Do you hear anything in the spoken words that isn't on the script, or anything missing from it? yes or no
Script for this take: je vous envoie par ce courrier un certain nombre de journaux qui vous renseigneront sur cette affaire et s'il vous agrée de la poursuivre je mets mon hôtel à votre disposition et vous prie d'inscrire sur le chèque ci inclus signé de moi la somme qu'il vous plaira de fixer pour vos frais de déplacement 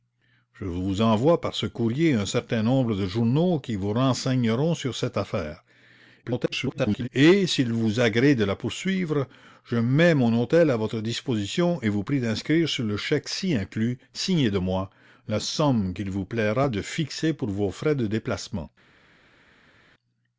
yes